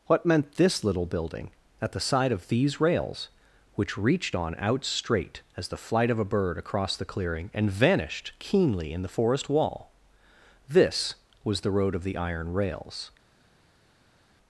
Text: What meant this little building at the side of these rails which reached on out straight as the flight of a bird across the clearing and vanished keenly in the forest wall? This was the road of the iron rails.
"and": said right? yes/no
yes